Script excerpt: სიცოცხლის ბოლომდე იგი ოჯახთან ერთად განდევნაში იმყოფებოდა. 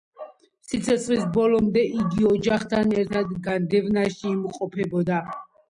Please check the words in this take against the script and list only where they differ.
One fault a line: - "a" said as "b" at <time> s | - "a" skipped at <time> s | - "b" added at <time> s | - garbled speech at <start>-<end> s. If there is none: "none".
none